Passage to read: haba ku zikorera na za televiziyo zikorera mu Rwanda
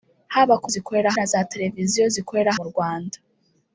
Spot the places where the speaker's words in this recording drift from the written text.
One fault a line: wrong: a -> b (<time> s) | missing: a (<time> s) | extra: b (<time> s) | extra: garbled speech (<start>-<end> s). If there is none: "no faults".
no faults